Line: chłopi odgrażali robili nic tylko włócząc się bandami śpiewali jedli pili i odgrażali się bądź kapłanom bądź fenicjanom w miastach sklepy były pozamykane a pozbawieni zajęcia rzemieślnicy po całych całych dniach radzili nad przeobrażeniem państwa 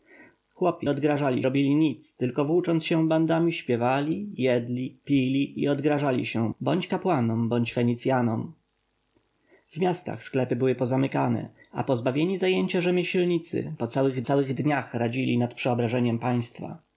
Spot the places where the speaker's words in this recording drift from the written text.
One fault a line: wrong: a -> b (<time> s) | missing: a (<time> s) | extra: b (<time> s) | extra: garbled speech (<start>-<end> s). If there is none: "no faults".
no faults